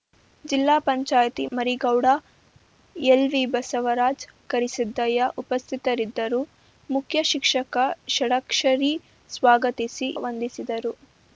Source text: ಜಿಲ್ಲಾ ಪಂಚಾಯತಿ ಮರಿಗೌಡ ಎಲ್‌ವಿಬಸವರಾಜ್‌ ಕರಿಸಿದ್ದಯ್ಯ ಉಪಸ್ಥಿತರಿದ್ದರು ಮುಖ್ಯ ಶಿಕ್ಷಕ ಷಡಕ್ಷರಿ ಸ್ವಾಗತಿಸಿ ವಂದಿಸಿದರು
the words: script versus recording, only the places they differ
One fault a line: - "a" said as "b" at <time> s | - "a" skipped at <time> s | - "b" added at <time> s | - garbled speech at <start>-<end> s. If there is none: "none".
none